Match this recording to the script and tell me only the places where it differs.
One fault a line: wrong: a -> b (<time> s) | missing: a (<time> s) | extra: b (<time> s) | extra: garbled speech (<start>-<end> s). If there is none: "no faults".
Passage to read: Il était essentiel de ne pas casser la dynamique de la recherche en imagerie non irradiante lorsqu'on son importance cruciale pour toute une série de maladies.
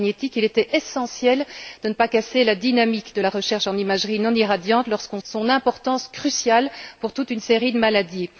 no faults